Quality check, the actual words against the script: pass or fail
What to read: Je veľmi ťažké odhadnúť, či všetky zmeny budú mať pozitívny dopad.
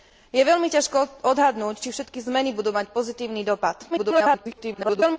fail